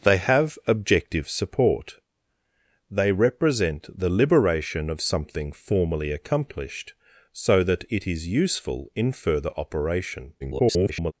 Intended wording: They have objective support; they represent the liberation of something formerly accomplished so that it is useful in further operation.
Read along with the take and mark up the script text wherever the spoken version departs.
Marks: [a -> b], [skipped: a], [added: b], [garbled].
They have objective support; they represent the liberation of something formerly accomplished so that it is useful in further operation. [garbled]